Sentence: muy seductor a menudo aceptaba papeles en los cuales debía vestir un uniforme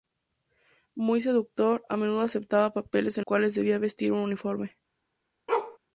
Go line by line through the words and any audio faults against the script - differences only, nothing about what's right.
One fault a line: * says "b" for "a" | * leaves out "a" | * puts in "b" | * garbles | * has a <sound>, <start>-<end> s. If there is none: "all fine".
* leaves out "los"
* has a bark, 5.5-5.8 s